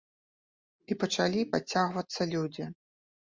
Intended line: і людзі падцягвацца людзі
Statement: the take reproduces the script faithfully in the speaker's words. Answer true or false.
false